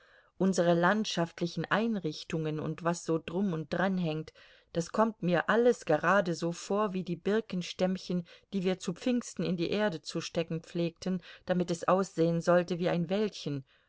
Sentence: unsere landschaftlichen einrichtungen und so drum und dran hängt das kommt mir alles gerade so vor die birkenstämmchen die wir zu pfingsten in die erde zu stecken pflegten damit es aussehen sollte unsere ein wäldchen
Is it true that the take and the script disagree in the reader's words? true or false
true